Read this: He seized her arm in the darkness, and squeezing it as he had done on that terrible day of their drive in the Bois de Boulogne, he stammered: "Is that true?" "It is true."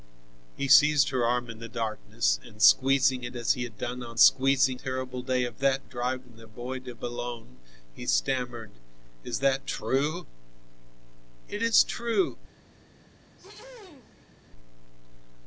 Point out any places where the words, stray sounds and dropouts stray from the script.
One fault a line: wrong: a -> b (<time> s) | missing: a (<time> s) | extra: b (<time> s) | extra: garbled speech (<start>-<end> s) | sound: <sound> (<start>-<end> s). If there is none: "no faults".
wrong: that -> squeezing (4.2 s)
wrong: their -> that (5.6 s)
sound: throat clearing (13.4-14.3 s)